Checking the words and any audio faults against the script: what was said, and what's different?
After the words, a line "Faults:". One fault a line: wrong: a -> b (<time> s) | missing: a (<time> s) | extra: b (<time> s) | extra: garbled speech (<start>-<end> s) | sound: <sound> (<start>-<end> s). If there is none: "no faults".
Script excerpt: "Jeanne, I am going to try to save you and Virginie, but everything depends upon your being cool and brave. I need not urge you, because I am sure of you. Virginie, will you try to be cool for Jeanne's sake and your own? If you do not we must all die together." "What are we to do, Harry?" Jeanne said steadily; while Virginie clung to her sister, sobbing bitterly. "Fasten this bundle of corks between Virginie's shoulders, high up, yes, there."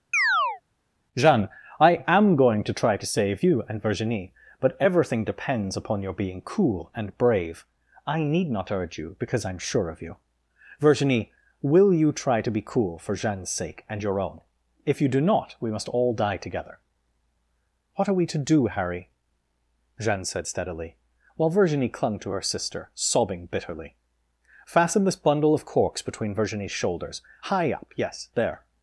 "Jeanne, I am going to try to save you and Virginie, but everything depends upon your being cool and brave. I need not urge you, because I am sure of you. Virginie, will you try to be cool for Jeanne's sake and your own? If you do not we must all die together." "What are we to do, Harry?" Jeanne said steadily; while Virginie clung to her sister, sobbing bitterly. "Fasten this bundle of corks between Virginie's shoulders, high up, yes, there."
Faults:
sound: chirp (0.1-0.6 s)